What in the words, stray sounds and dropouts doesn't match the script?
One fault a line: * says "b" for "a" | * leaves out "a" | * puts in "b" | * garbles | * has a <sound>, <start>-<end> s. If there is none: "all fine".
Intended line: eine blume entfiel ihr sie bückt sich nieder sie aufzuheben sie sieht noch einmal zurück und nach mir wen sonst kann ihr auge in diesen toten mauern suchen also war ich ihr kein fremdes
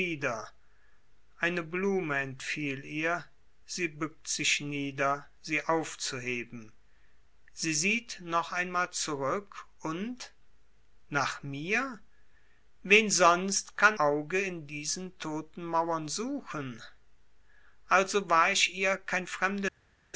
* leaves out "ihr"